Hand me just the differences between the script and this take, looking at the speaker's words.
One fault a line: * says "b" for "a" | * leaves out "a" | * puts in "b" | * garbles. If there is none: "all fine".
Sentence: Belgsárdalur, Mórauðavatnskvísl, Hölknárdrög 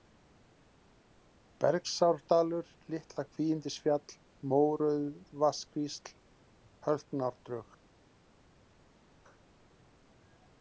* puts in "Litla Kvígindisfjall"